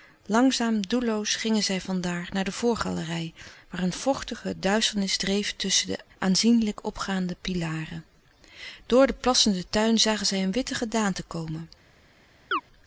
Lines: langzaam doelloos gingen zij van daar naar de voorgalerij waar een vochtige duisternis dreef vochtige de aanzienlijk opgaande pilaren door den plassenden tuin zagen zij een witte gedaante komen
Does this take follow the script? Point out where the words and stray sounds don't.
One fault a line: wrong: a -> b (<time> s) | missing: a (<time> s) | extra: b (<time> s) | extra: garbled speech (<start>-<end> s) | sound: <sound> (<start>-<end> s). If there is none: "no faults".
wrong: vochtige -> tusschen (5.6 s)
sound: chirp (12.5-12.6 s)